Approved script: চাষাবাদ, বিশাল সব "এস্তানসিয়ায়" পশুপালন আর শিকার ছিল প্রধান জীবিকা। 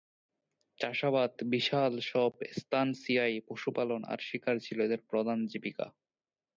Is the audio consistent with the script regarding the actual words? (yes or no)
no